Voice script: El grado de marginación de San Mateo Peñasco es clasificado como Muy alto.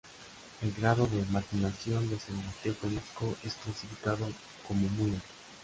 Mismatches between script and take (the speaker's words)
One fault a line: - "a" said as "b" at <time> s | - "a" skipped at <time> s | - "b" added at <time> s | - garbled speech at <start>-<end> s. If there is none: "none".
none